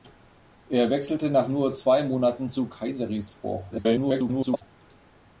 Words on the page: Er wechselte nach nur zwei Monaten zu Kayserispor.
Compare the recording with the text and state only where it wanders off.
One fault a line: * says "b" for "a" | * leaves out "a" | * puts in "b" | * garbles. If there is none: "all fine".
* garbles